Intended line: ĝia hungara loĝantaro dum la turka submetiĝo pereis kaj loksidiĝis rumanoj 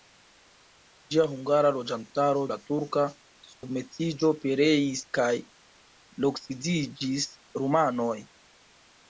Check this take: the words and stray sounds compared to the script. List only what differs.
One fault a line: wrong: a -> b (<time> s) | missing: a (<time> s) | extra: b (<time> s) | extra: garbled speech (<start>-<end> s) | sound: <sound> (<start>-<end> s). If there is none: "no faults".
missing: dum (2.4 s)
sound: dropout (3.5-3.6 s)